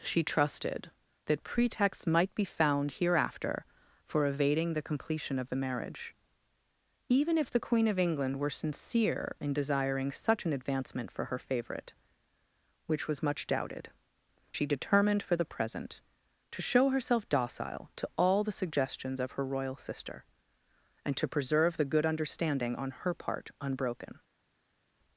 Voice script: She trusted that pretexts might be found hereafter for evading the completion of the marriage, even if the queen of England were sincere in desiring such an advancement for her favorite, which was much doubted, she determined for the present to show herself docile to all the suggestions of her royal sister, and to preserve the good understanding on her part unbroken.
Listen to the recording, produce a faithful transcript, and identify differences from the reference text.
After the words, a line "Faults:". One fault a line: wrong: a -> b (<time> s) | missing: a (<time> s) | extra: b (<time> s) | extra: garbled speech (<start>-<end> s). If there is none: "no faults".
She trusted that pretexts might be found hereafter for evading the completion of the marriage, even if the queen of England were sincere in desiring such an advancement for her favorite, which was much doubted, she determined for the present to show herself docile to all the suggestions of her royal sister, and to preserve the good understanding on her part unbroken.
Faults:
no faults